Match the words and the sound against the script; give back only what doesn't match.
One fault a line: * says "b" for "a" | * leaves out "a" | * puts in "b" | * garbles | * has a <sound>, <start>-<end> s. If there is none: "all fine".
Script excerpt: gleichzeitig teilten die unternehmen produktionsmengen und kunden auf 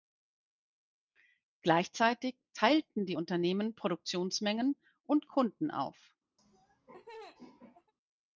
* has a laugh, 6.4-7.9 s